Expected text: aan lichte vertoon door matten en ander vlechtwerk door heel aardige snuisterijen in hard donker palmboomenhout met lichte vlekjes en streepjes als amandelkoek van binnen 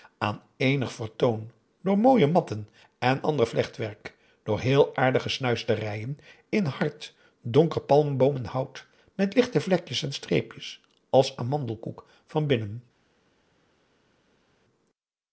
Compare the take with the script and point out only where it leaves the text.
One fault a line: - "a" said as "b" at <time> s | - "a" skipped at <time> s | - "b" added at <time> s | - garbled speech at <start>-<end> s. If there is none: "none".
- "lichte" said as "eenig" at 0.6 s
- "mooie" added at 2.0 s